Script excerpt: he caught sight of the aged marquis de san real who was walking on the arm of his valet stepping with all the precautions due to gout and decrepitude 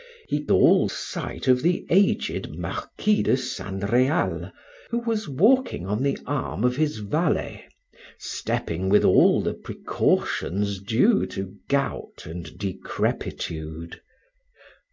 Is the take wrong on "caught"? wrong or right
wrong